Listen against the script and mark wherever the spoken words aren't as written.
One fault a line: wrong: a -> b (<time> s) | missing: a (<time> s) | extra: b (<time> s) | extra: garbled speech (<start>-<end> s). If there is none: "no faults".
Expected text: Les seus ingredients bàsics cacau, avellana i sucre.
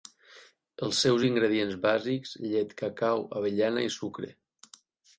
wrong: Les -> Els (0.9 s)
extra: llet (2.5 s)